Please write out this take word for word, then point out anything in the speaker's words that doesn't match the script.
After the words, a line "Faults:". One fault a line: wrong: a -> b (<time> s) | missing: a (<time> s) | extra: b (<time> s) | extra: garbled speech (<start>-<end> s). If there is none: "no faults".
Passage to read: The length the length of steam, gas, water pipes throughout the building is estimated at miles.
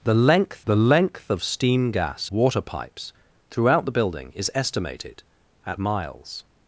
The length the length of steam, gas, water pipes throughout the building is estimated at miles.
Faults:
no faults